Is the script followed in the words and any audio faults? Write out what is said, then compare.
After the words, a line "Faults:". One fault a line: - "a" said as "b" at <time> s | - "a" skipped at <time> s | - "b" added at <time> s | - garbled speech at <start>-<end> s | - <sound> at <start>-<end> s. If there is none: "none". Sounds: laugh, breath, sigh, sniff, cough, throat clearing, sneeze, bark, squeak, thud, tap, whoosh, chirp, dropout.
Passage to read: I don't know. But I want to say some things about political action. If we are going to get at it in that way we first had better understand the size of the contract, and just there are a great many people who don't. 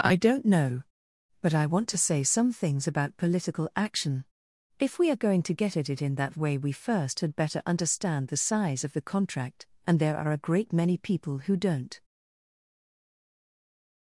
I don't know. But I want to say some things about political action. If we are going to get at it in that way we first had better understand the size of the contract, and there are a great many people who don't.
Faults:
- "just" skipped at 10.0 s